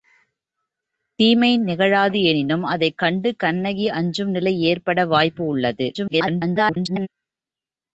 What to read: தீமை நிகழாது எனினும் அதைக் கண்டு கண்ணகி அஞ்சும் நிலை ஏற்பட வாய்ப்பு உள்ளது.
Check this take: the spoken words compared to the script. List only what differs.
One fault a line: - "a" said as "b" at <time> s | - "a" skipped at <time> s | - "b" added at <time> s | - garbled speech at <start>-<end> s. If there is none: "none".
- garbled speech at 5.9-7.1 s